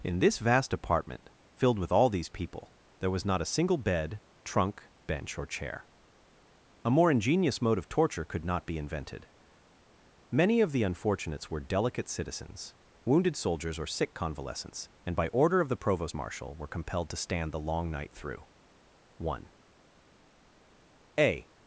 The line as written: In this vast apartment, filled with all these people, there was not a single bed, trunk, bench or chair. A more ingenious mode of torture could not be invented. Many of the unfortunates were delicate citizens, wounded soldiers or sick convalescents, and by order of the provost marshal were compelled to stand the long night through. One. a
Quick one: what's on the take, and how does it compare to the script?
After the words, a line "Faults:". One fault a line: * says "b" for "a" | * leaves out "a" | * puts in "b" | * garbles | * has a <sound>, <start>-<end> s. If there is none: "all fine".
In this vast apartment, filled with all these people, there was not a single bed, trunk, bench or chair. A more ingenious mode of torture could not be invented. Many of the unfortunates were delicate citizens, wounded soldiers or sick convalescents, and by order of the provost marshal were compelled to stand the long night through. One. a
Faults:
all fine